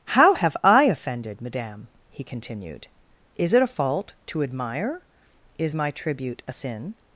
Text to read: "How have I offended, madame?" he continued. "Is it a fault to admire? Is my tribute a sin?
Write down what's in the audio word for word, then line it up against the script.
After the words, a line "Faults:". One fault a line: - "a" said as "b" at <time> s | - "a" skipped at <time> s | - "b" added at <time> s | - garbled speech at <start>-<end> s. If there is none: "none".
"How have I offended, madame?" he continued. "Is it a fault to admire? Is my tribute a sin?
Faults:
none